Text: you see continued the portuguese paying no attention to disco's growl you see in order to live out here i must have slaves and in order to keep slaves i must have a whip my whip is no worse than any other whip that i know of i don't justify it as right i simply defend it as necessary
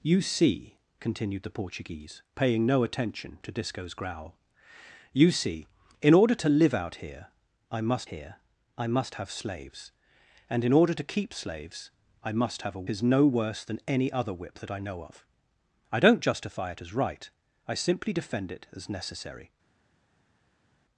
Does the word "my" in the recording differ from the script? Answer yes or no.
yes